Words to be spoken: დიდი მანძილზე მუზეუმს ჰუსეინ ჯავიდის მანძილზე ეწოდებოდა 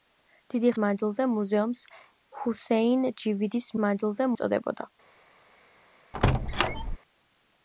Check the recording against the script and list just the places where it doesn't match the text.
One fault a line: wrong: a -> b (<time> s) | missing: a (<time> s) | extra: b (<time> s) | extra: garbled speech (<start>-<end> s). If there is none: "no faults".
no faults